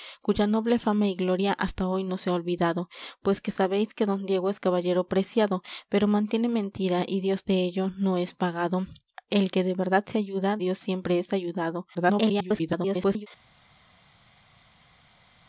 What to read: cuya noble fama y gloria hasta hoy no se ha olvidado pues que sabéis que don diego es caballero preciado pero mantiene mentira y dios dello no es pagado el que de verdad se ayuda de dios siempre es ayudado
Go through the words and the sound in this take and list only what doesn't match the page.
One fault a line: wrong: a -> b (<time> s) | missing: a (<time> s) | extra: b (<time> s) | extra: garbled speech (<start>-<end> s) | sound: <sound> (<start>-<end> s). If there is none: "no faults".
missing: de (10.6 s)
extra: garbled speech (11.9-13.3 s)